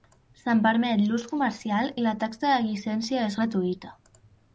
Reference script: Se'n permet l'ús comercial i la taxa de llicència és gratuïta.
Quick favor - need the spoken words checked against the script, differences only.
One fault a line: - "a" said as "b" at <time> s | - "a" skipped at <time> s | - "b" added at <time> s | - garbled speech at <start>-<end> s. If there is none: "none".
none